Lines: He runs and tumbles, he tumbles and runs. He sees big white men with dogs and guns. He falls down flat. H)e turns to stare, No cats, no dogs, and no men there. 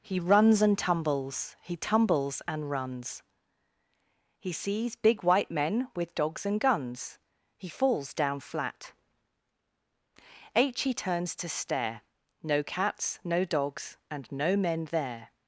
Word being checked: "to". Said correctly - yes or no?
yes